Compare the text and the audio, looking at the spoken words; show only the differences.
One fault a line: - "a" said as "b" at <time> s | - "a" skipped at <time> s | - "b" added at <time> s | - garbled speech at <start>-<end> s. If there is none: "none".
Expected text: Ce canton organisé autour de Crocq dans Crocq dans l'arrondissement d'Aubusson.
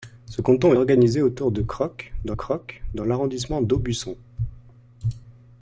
none